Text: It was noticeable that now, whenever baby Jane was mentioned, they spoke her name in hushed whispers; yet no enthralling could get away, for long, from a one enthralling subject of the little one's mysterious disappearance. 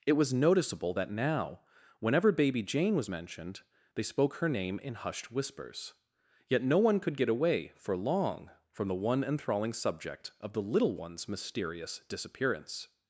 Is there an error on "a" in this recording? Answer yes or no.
yes